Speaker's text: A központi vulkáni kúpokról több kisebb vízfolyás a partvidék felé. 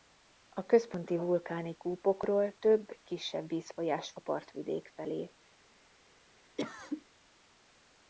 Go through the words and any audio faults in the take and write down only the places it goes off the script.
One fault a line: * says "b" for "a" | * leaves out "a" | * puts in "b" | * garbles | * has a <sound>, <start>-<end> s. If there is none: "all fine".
* has a cough, 6.6-7.1 s